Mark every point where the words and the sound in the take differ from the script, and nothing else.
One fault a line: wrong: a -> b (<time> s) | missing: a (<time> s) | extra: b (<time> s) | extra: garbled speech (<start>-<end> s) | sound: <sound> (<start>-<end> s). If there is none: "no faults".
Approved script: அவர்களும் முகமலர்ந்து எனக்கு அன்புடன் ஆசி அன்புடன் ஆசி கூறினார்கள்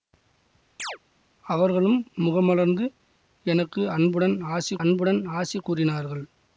sound: chirp (0.8-1.0 s)